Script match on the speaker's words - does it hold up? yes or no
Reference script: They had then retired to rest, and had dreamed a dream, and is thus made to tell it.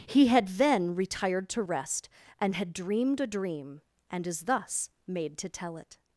no